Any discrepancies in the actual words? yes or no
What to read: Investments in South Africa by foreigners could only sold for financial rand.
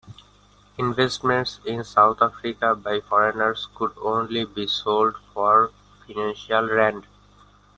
yes